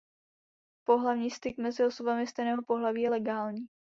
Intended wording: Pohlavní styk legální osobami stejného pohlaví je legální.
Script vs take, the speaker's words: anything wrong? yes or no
yes